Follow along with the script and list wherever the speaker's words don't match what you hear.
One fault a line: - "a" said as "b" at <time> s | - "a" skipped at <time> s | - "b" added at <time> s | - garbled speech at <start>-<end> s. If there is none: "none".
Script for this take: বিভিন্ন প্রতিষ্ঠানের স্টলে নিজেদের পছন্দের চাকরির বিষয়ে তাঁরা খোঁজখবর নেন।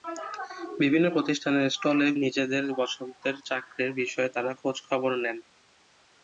none